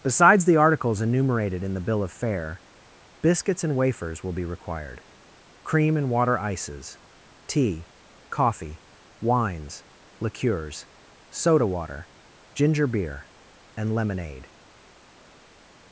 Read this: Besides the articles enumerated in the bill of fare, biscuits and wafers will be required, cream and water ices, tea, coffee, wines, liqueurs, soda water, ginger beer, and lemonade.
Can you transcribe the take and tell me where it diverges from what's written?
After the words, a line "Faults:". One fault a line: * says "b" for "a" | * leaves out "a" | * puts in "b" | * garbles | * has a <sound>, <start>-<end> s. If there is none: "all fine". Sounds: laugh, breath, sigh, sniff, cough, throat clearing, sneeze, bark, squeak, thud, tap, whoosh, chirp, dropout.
Besides the articles enumerated in the bill of fare, biscuits and wafers will be required, cream and water ices, tea, coffee, wines, liqueurs, soda water, ginger beer, and lemonade.
Faults:
all fine